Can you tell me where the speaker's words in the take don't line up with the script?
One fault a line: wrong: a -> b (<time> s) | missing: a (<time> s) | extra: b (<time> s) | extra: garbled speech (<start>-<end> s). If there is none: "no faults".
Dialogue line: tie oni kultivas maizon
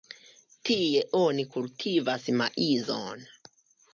no faults